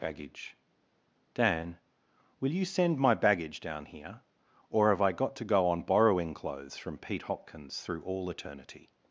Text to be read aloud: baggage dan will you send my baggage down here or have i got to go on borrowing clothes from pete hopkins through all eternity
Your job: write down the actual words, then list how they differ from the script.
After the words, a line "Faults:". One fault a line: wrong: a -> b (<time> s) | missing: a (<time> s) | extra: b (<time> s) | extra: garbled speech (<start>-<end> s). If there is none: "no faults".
baggage dan will you send my baggage down here or have i got to go on borrowing clothes from pete hopkins through all eternity
Faults:
no faults